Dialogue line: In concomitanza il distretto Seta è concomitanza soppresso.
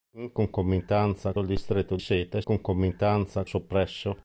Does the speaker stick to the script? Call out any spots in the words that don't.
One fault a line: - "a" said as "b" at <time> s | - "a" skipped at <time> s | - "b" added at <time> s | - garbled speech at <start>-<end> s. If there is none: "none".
none